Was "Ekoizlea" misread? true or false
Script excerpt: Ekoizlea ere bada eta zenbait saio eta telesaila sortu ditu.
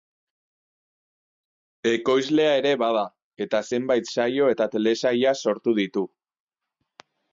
false